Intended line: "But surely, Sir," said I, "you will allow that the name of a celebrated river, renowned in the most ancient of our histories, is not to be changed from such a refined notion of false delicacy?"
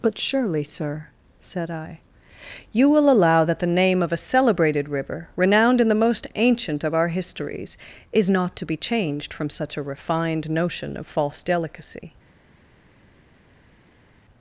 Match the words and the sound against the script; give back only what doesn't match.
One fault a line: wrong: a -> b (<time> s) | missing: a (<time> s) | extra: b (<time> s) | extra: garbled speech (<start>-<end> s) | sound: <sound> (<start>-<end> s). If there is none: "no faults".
no faults